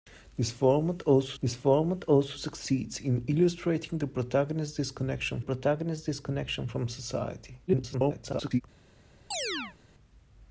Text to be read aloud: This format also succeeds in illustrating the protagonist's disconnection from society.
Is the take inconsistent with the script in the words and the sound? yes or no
yes